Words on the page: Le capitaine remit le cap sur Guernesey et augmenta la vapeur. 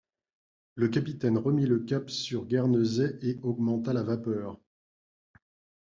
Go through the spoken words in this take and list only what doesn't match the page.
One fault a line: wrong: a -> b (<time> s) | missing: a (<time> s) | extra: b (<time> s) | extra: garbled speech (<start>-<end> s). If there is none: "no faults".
no faults